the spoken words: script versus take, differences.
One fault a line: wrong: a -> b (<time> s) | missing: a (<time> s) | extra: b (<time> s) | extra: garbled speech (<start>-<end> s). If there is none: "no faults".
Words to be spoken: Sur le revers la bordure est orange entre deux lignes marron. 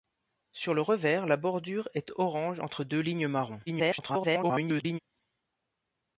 extra: garbled speech (3.7-5.0 s)